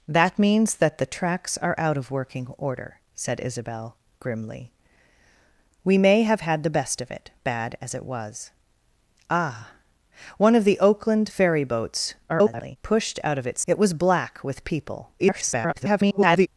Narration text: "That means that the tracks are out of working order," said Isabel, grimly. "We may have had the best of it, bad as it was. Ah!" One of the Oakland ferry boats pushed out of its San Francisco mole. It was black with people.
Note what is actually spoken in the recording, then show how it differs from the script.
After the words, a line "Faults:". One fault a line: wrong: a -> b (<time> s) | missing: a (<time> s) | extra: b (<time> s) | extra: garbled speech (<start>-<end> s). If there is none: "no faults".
"That means that the tracks are out of working order," said Isabel, grimly. "We may have had the best of it, bad as it was. Ah!" One of the Oakland ferry boats [garbled] pushed out of its. It was black with people. [garbled]
Faults:
extra: garbled speech (12.3-12.8 s)
missing: San Francisco mole (13.6 s)
extra: garbled speech (15.2-16.5 s)